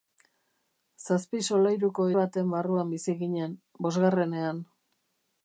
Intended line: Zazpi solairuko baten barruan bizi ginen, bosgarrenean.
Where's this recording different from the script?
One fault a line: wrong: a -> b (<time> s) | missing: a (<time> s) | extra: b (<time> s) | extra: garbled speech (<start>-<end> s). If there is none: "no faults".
no faults